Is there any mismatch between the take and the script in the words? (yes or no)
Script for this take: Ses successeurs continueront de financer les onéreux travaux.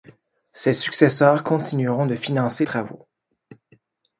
yes